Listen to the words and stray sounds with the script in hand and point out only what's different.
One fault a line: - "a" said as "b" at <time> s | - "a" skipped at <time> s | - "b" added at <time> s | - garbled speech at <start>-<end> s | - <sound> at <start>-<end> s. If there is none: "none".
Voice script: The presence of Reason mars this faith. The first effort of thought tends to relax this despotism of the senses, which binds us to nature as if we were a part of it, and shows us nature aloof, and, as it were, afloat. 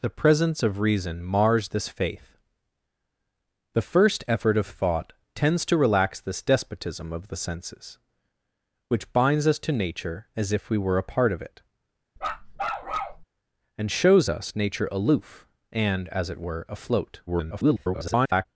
- bark at 12.2-13.3 s
- garbled speech at 17.3-18.5 s